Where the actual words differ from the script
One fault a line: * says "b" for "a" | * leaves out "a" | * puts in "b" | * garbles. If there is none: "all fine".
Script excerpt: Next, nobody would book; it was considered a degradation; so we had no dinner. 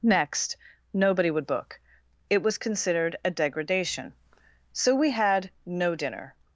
all fine